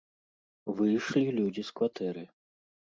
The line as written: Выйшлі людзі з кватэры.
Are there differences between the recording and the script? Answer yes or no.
no